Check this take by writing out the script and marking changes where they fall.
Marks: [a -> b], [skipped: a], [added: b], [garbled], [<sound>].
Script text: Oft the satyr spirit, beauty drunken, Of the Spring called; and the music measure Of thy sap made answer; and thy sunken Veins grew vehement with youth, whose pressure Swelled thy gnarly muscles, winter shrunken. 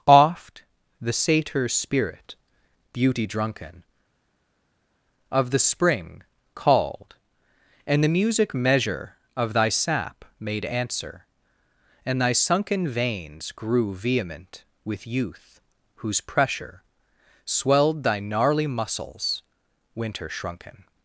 Oft the satyr spirit, beauty drunken, Of the Spring called; and the music measure Of thy sap made answer; and thy sunken Veins grew vehement with youth, whose pressure Swelled thy gnarly muscles, winter shrunken.